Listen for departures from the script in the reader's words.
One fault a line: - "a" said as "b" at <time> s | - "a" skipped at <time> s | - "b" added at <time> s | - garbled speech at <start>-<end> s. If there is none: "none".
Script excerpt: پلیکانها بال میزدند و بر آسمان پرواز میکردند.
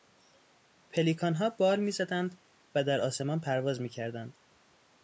- "بر" said as "در" at 2.8 s